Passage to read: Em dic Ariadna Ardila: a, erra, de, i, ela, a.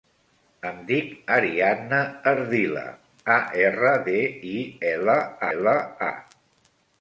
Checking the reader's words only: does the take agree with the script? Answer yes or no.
no